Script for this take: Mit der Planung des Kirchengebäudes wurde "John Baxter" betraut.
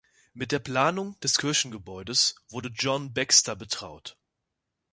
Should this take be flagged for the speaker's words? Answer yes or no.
no